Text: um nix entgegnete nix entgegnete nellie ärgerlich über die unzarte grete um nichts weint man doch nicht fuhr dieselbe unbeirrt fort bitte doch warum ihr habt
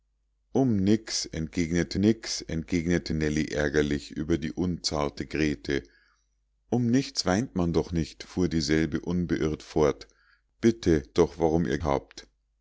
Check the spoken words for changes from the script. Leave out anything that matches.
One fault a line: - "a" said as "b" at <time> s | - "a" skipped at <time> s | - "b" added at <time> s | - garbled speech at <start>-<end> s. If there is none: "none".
none